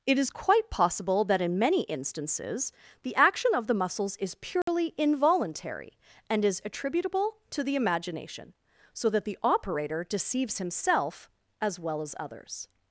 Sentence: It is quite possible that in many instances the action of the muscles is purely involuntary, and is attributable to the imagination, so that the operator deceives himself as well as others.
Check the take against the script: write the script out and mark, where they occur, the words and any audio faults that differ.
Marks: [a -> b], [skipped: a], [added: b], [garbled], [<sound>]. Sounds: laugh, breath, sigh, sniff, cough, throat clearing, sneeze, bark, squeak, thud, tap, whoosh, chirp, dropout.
It is quite possible that in many instances the action of the muscles is purely [dropout] involuntary, and is attributable to the imagination, so that the operator deceives himself as well as others.